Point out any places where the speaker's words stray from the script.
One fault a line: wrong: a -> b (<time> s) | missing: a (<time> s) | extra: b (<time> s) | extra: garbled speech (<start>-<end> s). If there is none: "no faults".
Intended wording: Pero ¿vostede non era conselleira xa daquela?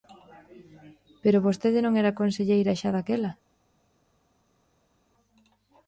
no faults